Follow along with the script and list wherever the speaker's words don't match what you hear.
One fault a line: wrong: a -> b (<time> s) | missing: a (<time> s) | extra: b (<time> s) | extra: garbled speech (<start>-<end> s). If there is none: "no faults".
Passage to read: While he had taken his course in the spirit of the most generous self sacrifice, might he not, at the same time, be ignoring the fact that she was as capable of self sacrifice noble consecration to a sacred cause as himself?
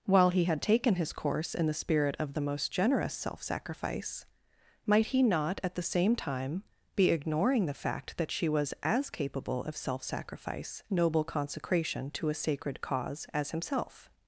no faults